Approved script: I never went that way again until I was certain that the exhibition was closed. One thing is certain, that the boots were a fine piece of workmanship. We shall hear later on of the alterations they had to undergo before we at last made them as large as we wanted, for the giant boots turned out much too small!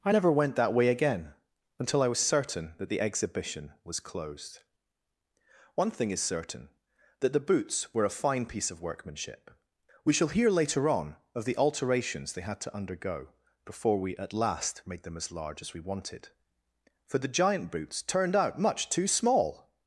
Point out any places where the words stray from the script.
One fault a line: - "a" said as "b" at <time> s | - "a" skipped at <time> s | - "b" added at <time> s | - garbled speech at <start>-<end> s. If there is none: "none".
none